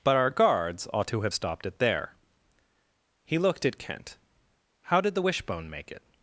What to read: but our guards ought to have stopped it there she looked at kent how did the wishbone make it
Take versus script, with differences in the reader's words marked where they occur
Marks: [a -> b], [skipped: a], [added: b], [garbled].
but our guards ought to have stopped it there [she -> he] looked at kent how did the wishbone make it